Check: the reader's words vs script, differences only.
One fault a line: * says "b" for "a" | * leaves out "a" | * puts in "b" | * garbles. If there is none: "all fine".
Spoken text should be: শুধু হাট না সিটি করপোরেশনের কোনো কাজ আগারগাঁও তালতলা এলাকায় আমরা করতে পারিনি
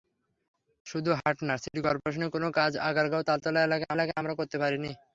* puts in "এলাকায়"